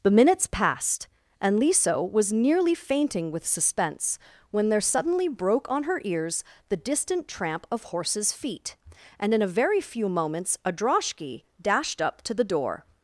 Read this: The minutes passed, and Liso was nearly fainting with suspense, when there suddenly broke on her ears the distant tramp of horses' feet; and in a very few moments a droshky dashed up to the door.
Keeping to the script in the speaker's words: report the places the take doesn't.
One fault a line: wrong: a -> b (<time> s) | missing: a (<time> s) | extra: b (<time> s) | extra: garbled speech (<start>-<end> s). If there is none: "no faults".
no faults